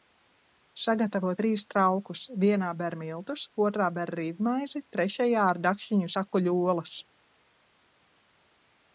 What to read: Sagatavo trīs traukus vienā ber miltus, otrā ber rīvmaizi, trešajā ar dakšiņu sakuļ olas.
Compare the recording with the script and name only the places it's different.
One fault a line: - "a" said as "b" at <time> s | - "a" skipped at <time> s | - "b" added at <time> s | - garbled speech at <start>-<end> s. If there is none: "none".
none